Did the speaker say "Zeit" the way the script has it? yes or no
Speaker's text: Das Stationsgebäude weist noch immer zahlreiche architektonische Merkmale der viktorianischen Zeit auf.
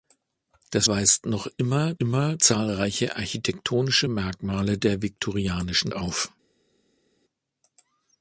no